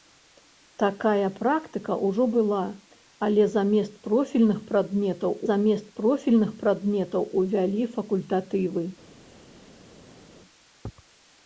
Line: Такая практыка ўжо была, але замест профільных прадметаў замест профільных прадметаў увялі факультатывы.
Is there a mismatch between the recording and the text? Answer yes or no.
no